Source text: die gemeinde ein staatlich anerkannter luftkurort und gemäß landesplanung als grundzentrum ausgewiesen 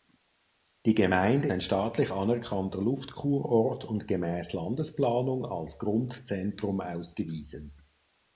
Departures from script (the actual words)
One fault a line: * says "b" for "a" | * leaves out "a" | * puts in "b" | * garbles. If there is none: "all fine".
all fine